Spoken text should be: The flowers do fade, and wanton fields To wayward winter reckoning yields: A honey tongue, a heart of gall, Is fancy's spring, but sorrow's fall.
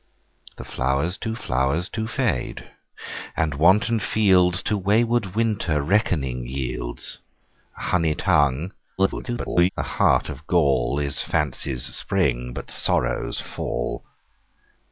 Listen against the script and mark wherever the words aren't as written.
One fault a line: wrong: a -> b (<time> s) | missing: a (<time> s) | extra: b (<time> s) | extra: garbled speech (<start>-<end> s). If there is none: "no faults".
extra: flowers do (1.3 s)
extra: garbled speech (9.0-9.7 s)